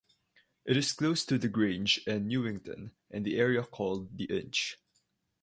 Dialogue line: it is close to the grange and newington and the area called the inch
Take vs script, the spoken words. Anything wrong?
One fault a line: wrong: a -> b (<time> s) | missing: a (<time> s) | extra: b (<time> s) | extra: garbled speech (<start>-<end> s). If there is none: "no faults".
no faults